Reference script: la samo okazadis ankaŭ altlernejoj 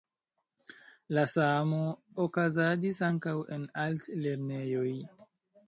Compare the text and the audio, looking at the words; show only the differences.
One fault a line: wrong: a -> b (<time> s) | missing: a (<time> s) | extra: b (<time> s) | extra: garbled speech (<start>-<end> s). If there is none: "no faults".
extra: en (3.6 s)